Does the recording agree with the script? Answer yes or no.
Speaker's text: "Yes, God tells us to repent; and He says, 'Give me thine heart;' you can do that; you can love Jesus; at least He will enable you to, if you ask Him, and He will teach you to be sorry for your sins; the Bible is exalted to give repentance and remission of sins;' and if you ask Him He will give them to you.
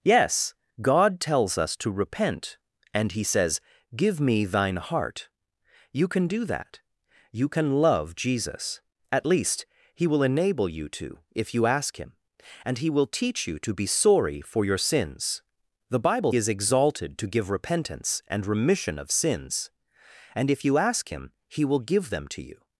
yes